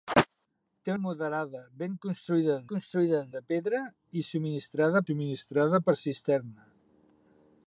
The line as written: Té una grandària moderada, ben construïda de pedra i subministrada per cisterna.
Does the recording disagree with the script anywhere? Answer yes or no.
yes